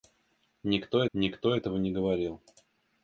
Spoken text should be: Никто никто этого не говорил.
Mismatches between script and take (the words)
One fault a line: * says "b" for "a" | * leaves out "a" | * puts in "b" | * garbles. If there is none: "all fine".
all fine